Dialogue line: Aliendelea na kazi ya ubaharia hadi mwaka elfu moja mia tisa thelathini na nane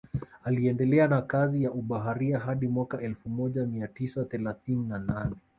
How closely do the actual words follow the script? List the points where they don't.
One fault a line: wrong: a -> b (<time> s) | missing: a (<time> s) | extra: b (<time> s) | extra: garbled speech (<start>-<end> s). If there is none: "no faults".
no faults